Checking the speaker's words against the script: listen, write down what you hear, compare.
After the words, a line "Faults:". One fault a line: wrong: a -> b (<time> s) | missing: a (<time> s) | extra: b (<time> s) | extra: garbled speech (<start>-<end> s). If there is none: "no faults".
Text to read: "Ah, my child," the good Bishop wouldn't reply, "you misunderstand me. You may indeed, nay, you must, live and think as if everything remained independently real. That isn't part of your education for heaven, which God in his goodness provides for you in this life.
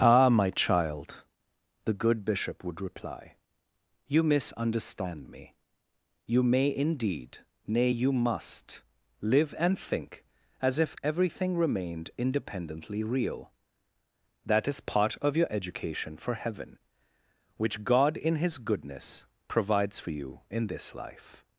"Ah, my child," the good Bishop would reply, "you misunderstand me. You may indeed, nay, you must, live and think as if everything remained independently real. That is part of your education for heaven, which God in his goodness provides for you in this life.
Faults:
wrong: wouldn't -> would (2.6 s)
wrong: isn't -> is (14.7 s)